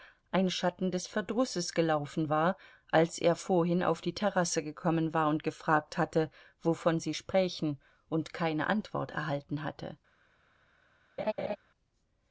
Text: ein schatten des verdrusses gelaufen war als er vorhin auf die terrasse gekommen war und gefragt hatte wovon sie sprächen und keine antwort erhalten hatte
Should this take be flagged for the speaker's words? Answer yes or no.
no